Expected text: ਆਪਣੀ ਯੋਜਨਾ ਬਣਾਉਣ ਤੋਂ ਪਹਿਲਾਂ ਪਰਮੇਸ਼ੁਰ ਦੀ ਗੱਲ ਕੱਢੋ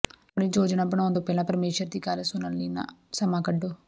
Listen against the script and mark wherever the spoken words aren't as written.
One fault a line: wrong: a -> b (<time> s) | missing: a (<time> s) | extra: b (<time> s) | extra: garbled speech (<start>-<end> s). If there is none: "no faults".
extra: ਸੁਣਨ ਲਈ ਸਮਾਂ (2.2 s)